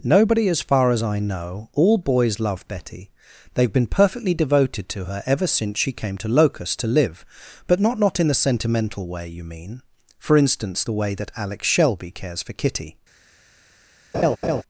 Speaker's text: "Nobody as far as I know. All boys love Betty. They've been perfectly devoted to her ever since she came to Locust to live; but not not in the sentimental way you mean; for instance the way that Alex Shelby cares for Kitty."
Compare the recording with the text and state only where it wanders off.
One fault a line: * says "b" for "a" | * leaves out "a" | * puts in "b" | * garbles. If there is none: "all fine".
all fine